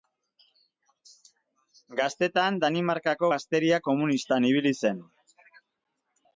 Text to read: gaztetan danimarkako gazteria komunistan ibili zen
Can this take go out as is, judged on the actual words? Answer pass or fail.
pass